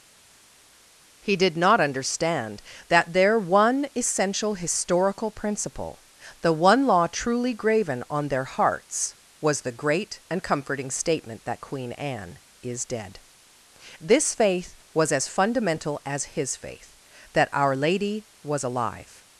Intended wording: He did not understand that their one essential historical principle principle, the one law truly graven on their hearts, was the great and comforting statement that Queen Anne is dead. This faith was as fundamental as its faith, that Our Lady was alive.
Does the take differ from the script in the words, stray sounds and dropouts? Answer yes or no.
yes